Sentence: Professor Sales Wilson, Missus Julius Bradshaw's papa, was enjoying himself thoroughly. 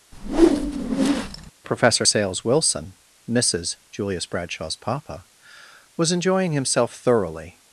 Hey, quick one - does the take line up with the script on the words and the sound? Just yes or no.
no